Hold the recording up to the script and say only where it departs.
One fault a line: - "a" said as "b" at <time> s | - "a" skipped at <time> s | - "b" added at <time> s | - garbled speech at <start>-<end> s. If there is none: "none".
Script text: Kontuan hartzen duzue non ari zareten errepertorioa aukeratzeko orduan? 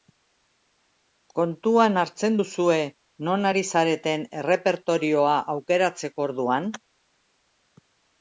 none